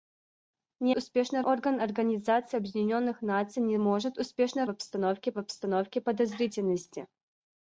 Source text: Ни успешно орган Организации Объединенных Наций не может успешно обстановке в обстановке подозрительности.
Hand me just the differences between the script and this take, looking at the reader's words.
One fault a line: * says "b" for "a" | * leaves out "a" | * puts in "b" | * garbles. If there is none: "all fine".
all fine